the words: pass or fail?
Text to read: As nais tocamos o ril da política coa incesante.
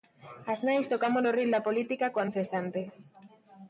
pass